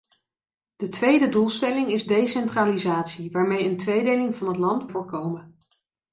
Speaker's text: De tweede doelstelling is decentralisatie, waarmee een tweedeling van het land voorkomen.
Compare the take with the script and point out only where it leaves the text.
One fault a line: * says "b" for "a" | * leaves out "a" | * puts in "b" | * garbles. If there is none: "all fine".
all fine